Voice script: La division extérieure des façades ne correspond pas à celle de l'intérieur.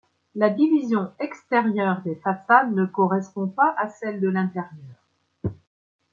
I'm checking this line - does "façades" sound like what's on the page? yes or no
yes